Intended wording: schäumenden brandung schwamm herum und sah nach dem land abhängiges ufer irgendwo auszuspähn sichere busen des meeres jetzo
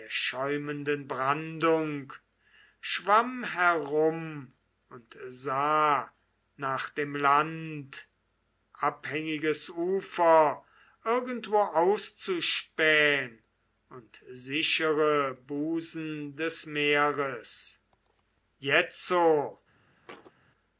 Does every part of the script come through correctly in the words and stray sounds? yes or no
no